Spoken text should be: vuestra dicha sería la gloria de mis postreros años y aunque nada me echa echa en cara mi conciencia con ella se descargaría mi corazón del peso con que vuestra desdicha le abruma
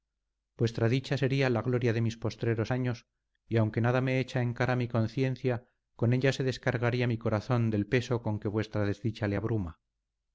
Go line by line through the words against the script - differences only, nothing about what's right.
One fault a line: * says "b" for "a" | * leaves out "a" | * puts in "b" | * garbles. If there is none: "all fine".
* leaves out "echa"